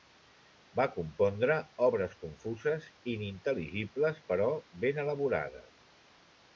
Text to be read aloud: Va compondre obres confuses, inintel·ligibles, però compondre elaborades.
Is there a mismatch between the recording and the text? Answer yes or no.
yes